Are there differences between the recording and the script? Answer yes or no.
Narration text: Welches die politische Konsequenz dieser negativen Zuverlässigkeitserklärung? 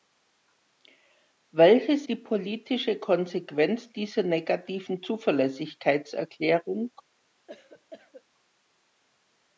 no